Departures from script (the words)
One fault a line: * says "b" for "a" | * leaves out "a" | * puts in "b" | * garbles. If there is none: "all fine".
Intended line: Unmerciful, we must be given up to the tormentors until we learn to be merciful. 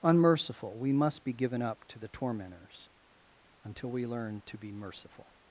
all fine